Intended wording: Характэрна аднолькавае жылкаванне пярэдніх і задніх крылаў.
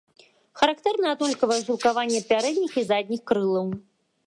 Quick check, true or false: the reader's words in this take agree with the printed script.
true